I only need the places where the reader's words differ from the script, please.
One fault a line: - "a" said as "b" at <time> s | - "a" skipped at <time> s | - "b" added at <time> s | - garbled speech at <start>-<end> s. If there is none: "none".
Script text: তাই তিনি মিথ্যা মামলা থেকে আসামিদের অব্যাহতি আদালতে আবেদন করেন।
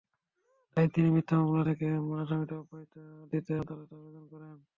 - "দিতে" added at 3.3 s